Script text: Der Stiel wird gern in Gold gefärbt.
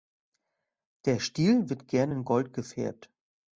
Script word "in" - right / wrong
right